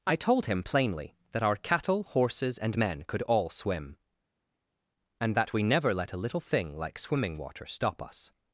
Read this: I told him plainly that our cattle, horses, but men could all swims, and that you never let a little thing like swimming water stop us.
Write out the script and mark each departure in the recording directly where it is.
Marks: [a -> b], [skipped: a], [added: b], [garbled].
I told him plainly that our cattle, horses, [but -> and] men could all [swims, -> swim] and that [you -> we] never let a little thing like swimming water stop us.